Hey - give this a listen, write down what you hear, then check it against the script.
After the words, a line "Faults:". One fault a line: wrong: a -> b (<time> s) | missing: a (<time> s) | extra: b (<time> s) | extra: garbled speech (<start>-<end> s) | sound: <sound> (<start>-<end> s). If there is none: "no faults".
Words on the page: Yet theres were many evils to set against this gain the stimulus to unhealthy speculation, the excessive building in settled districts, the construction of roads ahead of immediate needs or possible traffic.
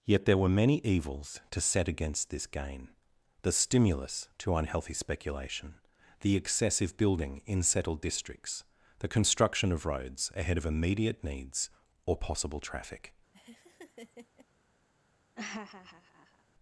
Yet there were many evils to set against this gain the stimulus to unhealthy speculation, the excessive building in settled districts, the construction of roads ahead of immediate needs or possible traffic.
Faults:
wrong: theres -> there (0.2 s)
sound: laugh (13.3-14.5 s)
sound: laugh (15.3-16.4 s)